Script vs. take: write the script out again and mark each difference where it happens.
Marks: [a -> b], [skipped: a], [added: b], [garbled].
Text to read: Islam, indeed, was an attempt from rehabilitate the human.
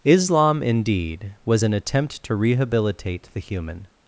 Islam, indeed, was an attempt [from -> to] rehabilitate the human.